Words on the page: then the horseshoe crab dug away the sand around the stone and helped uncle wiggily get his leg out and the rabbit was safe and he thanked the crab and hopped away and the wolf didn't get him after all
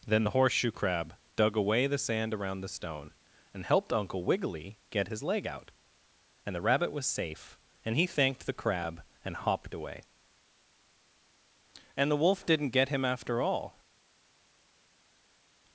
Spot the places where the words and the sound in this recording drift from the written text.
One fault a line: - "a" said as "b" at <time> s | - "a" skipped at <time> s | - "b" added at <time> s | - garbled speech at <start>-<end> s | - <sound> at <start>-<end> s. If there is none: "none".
none